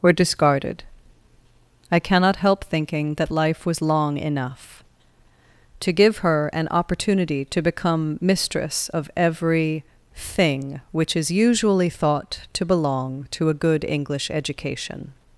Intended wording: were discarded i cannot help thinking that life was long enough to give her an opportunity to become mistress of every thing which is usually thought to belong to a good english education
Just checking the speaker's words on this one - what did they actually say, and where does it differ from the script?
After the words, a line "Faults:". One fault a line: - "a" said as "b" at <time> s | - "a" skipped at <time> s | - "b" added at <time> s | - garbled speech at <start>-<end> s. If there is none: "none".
were discarded i cannot help thinking that life was long enough to give her an opportunity to become mistress of every thing which is usually thought to belong to a good english education
Faults:
none